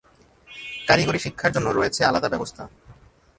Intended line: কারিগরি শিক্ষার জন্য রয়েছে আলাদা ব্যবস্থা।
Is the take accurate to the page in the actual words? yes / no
yes